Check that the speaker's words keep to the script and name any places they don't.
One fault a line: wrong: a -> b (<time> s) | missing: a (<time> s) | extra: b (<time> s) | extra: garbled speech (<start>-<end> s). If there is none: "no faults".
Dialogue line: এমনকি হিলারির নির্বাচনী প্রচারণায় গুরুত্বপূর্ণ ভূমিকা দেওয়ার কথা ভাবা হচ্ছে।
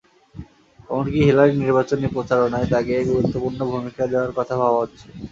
extra: তাঁকে (2.7 s)